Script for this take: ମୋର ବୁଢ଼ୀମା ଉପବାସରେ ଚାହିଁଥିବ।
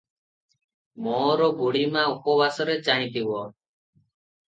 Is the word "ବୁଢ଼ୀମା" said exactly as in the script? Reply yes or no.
yes